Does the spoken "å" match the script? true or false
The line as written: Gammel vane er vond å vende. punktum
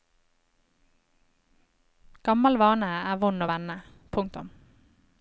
true